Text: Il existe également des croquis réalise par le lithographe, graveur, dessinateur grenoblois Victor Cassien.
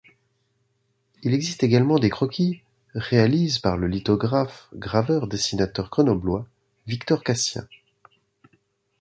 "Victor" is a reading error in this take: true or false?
false